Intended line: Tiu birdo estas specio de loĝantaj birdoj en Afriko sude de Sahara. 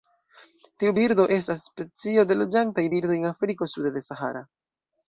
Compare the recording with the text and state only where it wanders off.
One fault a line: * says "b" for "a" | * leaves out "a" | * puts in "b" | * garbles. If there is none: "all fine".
all fine